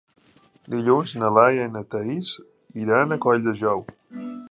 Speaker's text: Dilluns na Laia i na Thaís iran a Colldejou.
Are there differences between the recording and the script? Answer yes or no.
no